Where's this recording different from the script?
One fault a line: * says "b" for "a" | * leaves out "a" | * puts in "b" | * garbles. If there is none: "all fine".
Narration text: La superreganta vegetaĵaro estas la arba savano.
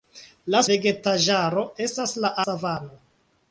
* leaves out "superreganta"
* leaves out "arba"